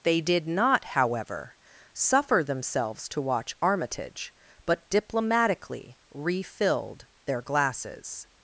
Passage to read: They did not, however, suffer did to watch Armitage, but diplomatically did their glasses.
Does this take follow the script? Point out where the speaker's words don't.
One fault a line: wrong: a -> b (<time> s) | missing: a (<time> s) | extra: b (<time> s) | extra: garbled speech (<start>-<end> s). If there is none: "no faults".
wrong: did -> themselves (2.4 s)
wrong: did -> refilled (6.1 s)